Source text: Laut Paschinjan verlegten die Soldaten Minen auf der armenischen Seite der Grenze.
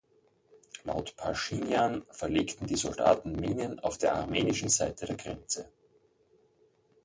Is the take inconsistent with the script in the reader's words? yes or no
no